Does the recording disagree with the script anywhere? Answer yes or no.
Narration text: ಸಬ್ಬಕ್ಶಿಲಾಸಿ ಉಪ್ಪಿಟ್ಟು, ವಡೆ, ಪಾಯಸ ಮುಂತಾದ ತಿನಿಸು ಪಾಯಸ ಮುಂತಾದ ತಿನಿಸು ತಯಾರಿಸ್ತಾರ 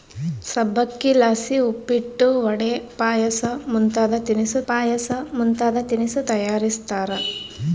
no